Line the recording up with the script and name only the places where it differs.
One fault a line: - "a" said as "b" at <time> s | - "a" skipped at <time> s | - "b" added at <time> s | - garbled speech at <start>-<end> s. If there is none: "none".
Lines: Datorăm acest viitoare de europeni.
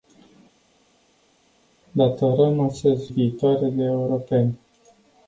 none